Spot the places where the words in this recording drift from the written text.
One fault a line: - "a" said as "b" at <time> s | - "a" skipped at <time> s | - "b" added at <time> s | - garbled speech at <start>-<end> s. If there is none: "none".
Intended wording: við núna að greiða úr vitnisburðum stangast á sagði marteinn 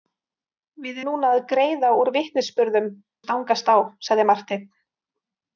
none